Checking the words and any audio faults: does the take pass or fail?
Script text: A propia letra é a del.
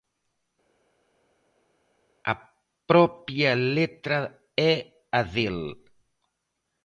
pass